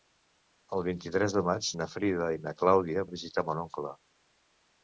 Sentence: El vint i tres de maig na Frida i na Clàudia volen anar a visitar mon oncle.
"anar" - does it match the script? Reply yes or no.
no